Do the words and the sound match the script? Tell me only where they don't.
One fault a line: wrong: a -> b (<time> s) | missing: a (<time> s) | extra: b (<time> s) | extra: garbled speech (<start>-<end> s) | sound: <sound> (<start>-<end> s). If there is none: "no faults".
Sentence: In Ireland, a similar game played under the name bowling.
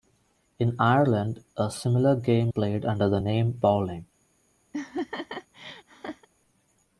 sound: laugh (4.7-6.3 s)